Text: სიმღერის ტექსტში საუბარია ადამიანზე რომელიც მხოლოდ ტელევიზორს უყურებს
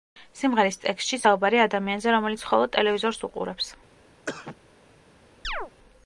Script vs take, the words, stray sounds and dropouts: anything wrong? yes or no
yes